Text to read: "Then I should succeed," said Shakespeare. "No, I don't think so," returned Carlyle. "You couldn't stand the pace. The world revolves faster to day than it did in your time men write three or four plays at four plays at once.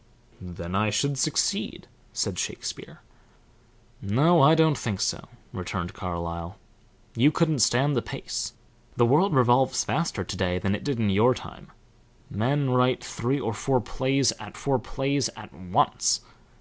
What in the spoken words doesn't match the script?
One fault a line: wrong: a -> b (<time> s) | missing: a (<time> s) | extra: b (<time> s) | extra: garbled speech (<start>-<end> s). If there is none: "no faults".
no faults